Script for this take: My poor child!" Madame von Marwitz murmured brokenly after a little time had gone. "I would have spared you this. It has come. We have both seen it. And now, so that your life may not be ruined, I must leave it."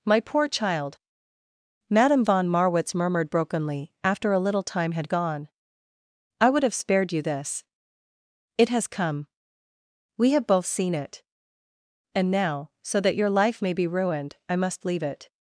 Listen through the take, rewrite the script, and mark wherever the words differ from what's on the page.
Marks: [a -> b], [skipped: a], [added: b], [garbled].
My poor child!" Madame von Marwitz murmured brokenly after a little time had gone. "I would have spared you this. It has come. We have both seen it. And now, so that your life may [skipped: not] be ruined, I must leave it."